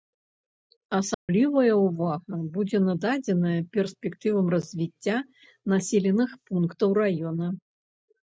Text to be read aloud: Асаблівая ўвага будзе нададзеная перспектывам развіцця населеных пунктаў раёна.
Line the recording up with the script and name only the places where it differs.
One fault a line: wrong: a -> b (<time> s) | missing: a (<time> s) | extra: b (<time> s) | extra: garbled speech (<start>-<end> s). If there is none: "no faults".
no faults